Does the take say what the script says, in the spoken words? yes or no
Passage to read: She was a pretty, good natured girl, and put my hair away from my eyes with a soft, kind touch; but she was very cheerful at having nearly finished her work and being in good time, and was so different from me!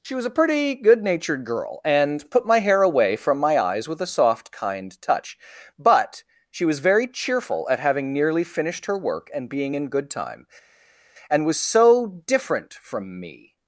yes